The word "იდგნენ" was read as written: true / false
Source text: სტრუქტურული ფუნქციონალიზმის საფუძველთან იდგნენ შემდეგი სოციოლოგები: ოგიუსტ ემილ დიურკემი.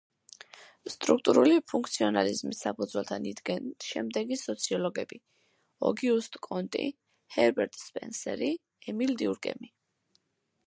true